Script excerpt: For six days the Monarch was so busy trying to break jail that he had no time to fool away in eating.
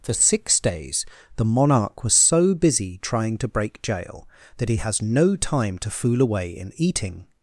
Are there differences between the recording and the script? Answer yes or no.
yes